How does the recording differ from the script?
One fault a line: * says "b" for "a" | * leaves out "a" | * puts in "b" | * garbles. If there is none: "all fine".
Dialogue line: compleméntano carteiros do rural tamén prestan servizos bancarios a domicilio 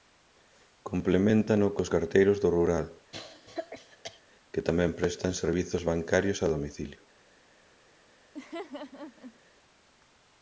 * puts in "cos"
* puts in "que"